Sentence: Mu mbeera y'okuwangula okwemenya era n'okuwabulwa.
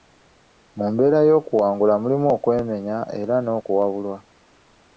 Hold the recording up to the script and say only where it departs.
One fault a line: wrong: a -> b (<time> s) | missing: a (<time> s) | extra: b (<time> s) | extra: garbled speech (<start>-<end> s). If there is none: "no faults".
extra: mulimu (2.0 s)